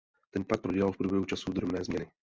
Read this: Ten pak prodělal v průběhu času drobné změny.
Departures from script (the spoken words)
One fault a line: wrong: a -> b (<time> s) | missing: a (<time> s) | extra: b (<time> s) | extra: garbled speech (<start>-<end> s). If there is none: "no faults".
no faults